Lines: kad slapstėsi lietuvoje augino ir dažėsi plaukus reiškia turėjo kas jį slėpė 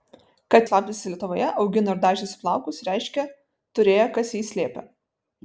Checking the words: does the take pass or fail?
pass